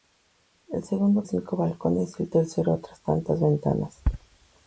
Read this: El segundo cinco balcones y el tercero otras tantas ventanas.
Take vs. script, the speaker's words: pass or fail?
pass